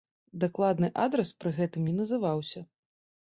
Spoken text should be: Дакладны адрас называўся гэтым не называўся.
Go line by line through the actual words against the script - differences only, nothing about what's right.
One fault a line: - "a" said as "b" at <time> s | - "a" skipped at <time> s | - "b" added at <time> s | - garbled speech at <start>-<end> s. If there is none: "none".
- "называўся" said as "пры" at 1.4 s